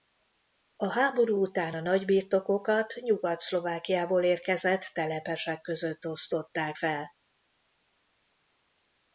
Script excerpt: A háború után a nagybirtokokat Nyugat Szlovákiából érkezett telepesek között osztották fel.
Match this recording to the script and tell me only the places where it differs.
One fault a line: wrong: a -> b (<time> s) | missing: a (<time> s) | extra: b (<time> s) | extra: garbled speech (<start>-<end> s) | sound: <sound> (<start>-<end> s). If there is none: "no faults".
no faults